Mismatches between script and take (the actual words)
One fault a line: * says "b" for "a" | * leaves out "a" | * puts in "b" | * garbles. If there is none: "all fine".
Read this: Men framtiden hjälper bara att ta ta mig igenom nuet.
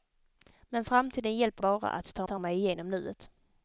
all fine